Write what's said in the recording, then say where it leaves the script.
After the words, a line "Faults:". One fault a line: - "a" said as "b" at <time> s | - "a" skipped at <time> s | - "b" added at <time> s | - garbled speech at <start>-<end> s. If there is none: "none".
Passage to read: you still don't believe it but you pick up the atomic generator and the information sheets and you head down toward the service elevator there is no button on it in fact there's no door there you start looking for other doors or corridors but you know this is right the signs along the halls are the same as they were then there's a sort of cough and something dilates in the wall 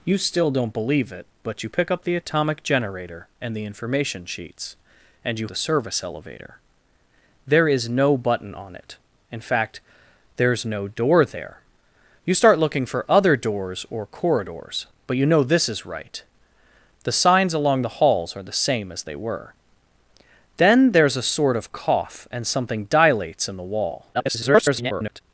you still don't believe it but you pick up the atomic generator and the information sheets and you the service elevator there is no button on it in fact there's no door there you start looking for other doors or corridors but you know this is right the signs along the halls are the same as they were then there's a sort of cough and something dilates in the wall [garbled]
Faults:
- "head down toward" skipped at 5.5 s
- garbled speech at 24.1-25.2 s